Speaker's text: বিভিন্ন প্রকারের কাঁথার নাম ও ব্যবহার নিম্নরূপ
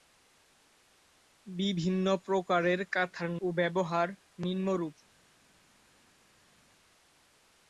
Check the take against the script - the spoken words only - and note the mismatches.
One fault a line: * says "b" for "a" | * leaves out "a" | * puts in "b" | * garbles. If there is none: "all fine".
* leaves out "নাম"